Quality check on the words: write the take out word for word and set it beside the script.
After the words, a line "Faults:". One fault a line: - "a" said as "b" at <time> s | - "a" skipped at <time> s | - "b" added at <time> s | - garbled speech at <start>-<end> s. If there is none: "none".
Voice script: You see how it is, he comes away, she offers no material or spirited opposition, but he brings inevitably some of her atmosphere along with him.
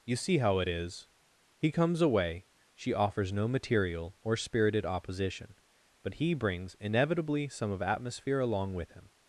You see how it is, he comes away, she offers no material or spirited opposition, but he brings inevitably some of atmosphere along with him.
Faults:
- "her" skipped at 7.8 s